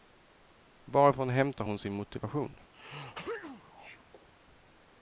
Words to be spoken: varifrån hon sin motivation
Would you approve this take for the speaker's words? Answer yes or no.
no